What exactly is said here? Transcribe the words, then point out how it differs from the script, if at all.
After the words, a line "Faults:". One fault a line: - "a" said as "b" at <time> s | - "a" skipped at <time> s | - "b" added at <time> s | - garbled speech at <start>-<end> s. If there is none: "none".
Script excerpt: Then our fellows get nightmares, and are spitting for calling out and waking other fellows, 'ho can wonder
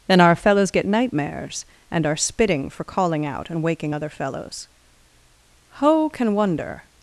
Then our fellows get nightmares, and are spitting for calling out and waking other fellows, 'ho can wonder
Faults:
none